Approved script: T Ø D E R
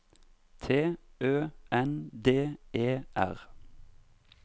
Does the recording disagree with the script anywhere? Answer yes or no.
yes